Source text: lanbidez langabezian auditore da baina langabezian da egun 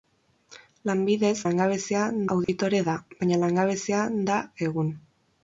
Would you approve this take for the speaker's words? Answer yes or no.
yes